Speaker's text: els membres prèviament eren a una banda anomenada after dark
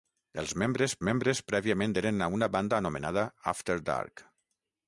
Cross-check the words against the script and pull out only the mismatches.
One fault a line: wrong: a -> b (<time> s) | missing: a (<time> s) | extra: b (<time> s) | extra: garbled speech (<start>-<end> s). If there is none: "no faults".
extra: membres (1.1 s)